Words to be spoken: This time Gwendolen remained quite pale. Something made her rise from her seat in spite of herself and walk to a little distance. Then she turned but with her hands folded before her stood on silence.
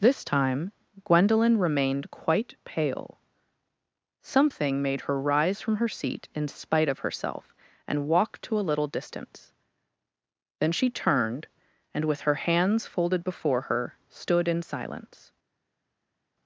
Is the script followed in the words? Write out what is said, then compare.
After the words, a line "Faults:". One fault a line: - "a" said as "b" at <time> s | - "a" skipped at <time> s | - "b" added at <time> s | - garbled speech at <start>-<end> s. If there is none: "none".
This time Gwendolen remained quite pale. Something made her rise from her seat in spite of herself and walk to a little distance. Then she turned and with her hands folded before her stood in silence.
Faults:
- "but" said as "and" at 11.9 s
- "on" said as "in" at 14.5 s